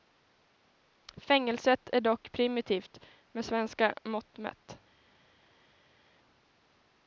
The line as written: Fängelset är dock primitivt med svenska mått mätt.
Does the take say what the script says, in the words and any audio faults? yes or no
yes